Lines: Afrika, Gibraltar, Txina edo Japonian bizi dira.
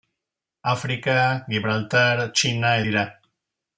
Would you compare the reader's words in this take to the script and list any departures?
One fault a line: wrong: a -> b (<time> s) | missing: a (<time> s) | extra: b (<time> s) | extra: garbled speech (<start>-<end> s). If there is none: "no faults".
missing: edo Japonian bizi (2.7 s)